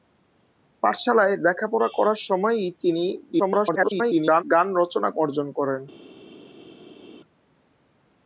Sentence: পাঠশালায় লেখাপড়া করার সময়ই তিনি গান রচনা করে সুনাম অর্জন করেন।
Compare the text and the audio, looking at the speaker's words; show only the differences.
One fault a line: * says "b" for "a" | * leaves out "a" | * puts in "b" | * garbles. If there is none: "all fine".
* garbles
* leaves out "করে সুনাম"